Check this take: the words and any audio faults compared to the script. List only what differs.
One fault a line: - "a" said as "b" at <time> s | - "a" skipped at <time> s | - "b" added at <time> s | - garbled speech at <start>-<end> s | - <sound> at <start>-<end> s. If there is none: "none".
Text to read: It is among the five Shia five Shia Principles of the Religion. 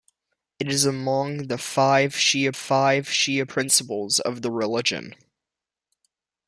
none